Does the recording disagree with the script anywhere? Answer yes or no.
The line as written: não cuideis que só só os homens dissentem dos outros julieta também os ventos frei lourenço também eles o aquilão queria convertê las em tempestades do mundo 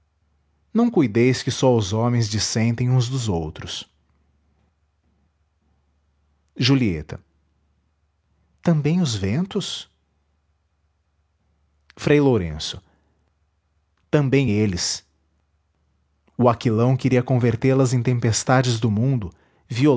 yes